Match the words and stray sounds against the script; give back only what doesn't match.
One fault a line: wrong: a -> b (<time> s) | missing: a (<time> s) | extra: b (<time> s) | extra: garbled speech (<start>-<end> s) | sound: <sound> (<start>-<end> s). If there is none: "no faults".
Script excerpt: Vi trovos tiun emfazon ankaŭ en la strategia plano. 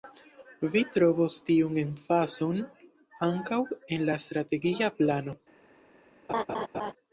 sound: laugh (6.3-6.9 s)